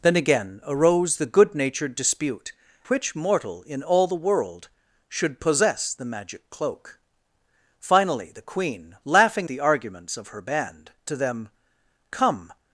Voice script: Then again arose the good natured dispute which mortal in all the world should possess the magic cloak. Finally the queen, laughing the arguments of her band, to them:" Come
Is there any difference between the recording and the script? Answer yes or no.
no